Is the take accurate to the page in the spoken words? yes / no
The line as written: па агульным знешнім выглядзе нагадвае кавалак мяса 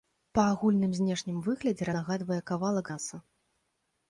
yes